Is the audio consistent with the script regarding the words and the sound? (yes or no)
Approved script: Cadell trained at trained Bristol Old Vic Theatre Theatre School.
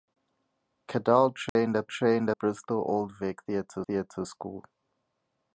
no